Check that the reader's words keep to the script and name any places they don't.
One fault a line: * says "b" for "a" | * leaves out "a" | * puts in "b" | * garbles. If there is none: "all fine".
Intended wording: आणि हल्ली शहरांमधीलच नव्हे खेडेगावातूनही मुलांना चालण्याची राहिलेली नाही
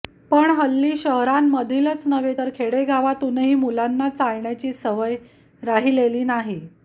* says "पण" for "आणि"
* puts in "तर"
* puts in "सवय"